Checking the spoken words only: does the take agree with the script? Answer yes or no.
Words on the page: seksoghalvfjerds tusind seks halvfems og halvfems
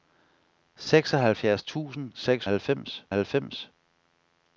yes